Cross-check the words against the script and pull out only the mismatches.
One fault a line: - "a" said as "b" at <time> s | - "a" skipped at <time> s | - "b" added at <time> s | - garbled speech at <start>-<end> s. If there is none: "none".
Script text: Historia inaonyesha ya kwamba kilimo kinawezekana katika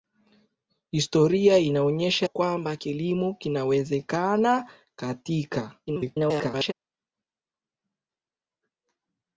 - "ya" skipped at 2.3 s
- garbled speech at 5.9-6.7 s